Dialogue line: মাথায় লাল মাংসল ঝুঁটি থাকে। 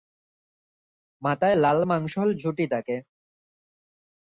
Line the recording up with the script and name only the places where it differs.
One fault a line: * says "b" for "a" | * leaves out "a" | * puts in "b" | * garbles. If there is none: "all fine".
all fine